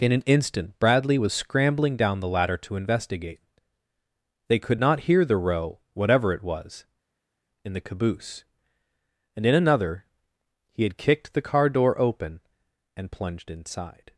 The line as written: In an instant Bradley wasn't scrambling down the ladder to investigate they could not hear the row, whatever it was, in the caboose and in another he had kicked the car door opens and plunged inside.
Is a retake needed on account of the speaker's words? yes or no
yes